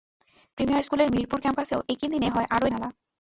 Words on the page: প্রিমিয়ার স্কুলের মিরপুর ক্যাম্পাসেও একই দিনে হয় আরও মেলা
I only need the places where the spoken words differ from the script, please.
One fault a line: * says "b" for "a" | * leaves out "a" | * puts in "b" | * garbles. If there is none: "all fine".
all fine